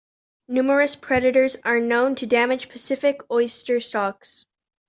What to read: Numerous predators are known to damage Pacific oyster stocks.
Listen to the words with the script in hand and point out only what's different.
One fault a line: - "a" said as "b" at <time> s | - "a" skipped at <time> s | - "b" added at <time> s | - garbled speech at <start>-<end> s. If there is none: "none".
none